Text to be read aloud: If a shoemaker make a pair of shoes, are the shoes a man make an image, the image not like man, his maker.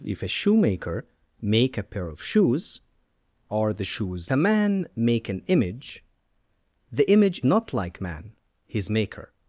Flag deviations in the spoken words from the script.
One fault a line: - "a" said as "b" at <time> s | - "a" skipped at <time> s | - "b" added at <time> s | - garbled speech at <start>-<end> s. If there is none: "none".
none